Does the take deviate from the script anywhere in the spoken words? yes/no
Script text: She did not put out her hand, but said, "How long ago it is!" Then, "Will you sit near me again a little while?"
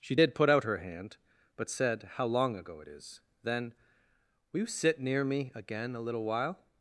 yes